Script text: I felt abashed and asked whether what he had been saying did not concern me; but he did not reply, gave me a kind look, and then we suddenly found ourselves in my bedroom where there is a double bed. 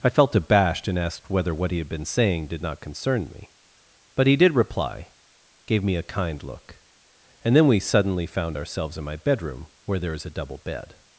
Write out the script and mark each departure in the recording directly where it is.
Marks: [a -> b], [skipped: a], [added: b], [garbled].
I felt abashed and asked whether what he had been saying did not concern me; but he did [skipped: not] reply, gave me a kind look, and then we suddenly found ourselves in my bedroom where there is a double bed.